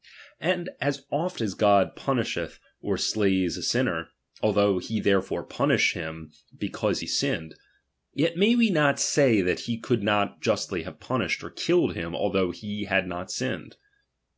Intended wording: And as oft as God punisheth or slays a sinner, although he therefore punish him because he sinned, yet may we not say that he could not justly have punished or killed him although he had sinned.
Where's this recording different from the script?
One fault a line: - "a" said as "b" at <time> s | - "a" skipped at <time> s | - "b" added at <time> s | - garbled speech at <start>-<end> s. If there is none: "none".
- "not" added at 13.1 s